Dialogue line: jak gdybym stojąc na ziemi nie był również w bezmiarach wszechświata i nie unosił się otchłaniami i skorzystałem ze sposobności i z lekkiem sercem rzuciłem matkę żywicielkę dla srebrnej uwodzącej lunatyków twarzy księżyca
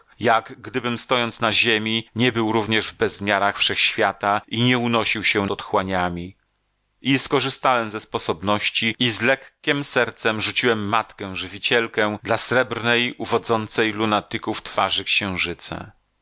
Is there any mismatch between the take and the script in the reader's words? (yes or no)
no